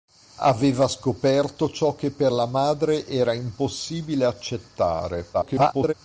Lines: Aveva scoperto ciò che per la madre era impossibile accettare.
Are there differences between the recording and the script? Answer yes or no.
yes